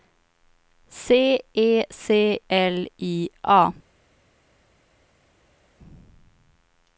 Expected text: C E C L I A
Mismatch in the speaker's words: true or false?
false